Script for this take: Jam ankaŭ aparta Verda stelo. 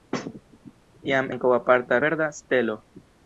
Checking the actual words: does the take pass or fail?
pass